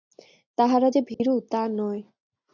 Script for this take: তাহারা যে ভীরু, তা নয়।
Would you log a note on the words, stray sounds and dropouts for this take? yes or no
yes